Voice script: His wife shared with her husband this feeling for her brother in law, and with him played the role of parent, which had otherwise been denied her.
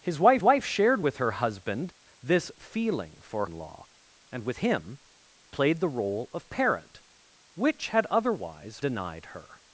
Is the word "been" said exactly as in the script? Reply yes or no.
no